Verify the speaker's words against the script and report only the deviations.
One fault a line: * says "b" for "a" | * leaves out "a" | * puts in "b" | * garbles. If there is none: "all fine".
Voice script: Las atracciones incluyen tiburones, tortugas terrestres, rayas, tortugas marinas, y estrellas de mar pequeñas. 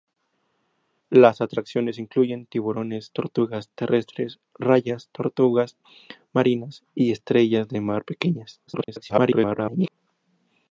* garbles